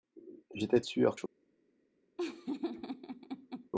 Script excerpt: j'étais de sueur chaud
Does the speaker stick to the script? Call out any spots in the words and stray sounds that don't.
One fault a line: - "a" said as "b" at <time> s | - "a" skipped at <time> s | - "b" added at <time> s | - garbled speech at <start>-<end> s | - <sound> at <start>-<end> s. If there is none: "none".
- laugh at 2.2-3.7 s